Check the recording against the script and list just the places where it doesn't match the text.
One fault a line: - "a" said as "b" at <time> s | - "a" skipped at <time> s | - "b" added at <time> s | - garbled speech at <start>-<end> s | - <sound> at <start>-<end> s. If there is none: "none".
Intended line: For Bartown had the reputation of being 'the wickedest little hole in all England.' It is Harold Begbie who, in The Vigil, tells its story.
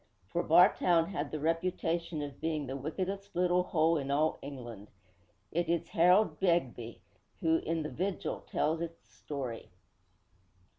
none